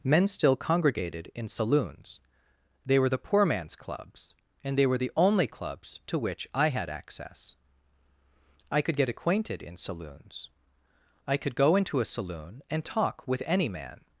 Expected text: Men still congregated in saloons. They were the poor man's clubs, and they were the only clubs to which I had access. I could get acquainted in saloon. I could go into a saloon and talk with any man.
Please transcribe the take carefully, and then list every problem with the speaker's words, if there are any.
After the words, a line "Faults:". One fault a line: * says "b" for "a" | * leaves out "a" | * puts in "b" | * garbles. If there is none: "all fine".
Men still congregated in saloons. They were the poor man's clubs, and they were the only clubs to which I had access. I could get acquainted in saloons. I could go into a saloon and talk with any man.
Faults:
* says "saloons" for "saloon"